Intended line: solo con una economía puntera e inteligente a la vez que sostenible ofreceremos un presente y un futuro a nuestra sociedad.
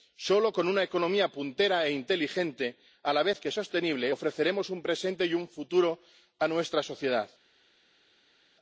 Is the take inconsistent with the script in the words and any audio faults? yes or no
no